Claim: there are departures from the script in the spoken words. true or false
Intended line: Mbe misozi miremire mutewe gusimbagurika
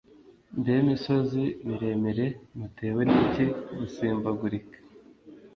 true